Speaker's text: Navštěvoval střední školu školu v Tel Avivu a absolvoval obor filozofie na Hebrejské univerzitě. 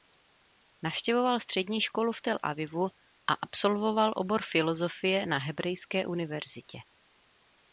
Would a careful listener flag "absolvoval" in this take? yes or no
no